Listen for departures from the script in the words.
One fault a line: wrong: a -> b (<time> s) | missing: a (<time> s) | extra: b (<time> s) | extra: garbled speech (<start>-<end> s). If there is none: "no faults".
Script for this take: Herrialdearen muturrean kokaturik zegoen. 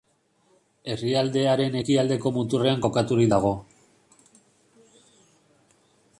extra: ekialdeko (1.8 s)
wrong: zegoen -> dago (3.3 s)